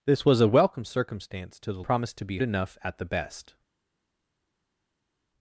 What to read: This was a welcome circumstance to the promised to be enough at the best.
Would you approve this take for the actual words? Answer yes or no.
yes